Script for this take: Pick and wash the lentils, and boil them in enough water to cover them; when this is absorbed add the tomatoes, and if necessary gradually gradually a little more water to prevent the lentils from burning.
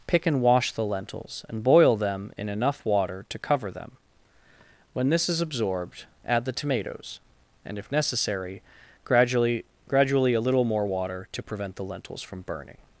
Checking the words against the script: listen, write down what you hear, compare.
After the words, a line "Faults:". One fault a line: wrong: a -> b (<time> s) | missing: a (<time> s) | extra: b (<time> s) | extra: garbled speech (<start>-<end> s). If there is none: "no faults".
Pick and wash the lentils, and boil them in enough water to cover them; when this is absorbed add the tomatoes, and if necessary gradually gradually a little more water to prevent the lentils from burning.
Faults:
no faults